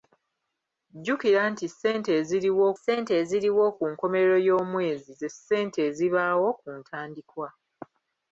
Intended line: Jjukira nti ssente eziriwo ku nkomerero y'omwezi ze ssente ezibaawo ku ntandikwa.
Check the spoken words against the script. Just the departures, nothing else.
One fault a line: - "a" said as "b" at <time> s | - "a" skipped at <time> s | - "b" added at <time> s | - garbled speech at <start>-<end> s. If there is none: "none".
- "ssente eziriwo" added at 2.8 s